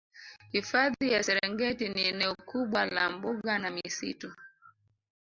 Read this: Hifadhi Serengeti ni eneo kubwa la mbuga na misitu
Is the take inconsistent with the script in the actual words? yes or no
yes